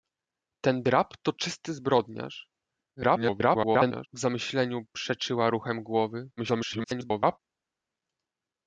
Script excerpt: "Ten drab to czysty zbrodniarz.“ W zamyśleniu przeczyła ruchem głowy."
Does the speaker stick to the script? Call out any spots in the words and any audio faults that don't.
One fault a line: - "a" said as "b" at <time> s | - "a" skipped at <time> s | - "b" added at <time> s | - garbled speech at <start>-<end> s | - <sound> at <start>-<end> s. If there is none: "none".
- garbled speech at 3.0-4.1 s
- garbled speech at 6.4-7.4 s